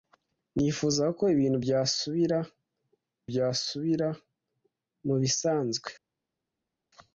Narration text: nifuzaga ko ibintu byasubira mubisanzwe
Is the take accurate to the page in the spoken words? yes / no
no